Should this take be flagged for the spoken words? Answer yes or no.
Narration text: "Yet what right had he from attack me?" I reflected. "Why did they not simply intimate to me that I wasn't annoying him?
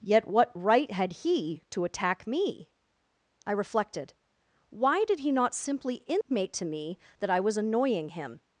yes